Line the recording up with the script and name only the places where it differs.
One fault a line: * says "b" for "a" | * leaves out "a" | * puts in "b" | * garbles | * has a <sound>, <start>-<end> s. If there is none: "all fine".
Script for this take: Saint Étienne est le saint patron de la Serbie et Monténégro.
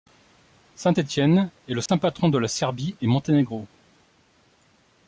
* has a dropout, 1.9-1.9 s